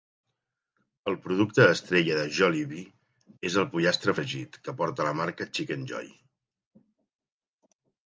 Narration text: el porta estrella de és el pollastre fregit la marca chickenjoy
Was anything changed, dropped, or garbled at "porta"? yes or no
yes